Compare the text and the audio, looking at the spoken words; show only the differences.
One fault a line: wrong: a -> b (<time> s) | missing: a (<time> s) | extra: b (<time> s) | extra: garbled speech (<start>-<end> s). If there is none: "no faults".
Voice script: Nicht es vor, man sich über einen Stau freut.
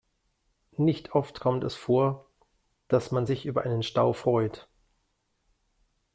extra: oft kommt (1.1 s)
extra: dass (2.9 s)